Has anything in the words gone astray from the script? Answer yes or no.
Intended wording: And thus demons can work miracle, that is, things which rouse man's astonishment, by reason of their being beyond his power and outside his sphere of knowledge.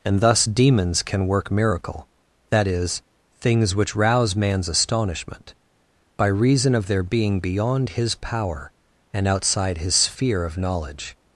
no